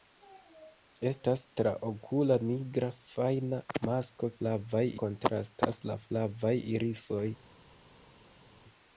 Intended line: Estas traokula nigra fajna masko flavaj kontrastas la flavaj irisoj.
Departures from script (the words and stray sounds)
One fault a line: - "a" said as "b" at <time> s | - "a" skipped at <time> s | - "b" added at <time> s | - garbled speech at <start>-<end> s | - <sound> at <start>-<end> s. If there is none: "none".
none